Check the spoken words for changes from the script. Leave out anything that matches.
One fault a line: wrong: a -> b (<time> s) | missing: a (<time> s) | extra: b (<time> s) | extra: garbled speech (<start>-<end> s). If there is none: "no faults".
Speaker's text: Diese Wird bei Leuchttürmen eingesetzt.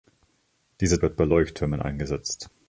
no faults